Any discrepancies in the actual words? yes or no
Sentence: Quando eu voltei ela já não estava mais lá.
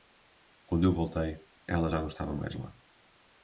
no